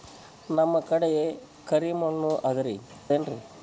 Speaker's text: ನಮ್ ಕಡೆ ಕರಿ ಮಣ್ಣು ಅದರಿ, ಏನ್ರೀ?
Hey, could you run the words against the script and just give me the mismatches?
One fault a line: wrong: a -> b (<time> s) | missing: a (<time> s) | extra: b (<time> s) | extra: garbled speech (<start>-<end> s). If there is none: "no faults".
no faults